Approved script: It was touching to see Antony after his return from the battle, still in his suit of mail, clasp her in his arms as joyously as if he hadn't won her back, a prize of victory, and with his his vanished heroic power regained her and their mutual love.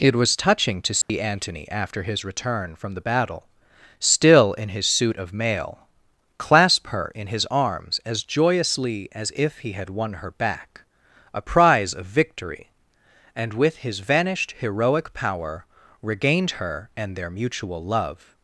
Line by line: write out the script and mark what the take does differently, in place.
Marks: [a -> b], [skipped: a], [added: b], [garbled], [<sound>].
It was touching to see [dropout] Antony after his return from the battle, still in his suit of mail, clasp her in his arms as joyously as if he [hadn't -> had] won her back, a prize of victory, and with his [skipped: his] vanished heroic power regained her and their mutual love.